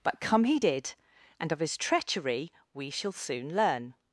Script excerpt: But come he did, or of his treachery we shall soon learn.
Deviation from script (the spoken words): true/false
true